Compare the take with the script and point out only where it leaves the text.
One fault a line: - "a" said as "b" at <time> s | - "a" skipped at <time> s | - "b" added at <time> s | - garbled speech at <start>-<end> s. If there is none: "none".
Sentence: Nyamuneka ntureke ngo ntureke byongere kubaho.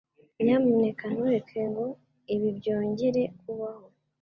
- "ntureke" said as "ibi" at 2.3 s